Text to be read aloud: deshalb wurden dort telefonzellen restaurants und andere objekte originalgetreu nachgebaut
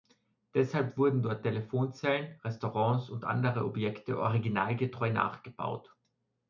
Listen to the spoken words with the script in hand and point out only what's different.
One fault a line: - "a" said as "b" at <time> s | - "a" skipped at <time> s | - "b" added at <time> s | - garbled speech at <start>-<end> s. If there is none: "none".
none